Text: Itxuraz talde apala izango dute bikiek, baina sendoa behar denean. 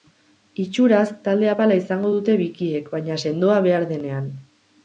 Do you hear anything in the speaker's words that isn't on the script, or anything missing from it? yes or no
no